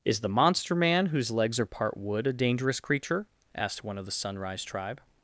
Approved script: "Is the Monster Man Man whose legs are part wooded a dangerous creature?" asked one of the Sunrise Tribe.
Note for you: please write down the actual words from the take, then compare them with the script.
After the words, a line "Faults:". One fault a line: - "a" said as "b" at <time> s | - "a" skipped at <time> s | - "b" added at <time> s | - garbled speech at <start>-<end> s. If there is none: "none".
"Is the Monster Man whose legs are part wood a dangerous creature?" asked one of the Sunrise Tribe.
Faults:
- "Man" skipped at 1.1 s
- "wooded" said as "wood" at 1.9 s